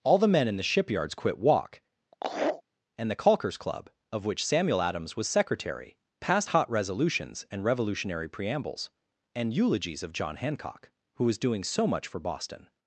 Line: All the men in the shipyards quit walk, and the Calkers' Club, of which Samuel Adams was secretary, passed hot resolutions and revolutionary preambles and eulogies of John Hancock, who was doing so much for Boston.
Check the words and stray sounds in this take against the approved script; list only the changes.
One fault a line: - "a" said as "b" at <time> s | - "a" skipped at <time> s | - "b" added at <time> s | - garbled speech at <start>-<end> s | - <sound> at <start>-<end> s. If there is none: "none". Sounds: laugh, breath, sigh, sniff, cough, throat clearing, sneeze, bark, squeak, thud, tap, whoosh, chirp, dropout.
- laugh at 2.1-2.6 s